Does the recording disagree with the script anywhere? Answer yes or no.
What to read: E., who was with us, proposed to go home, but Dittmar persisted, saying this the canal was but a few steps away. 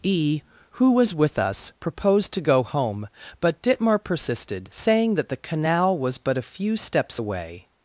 yes